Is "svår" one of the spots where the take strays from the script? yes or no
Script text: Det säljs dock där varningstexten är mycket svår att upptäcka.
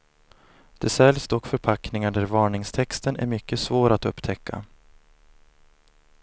no